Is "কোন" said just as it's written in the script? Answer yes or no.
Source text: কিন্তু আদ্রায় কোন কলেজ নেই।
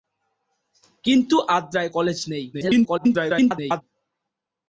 no